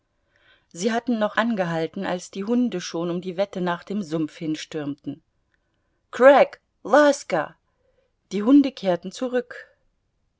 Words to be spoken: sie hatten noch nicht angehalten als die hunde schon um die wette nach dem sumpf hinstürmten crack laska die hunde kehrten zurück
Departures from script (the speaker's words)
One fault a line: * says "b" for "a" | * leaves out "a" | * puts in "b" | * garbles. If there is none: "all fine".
* leaves out "nicht"